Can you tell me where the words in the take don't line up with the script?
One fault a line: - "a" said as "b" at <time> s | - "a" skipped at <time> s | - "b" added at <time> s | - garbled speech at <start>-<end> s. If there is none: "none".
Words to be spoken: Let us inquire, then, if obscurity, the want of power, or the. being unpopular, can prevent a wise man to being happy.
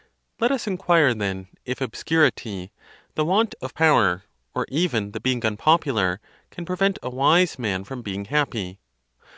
- "even" added at 4.7 s
- "to" said as "from" at 7.8 s